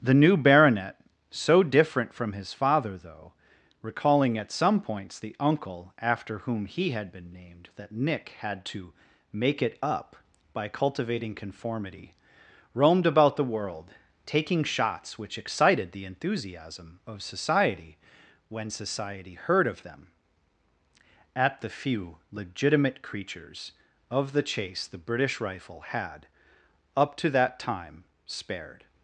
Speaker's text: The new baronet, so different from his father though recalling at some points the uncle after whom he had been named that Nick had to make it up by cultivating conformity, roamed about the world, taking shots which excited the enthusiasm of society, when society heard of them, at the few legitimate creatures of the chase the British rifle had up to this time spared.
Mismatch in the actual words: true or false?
true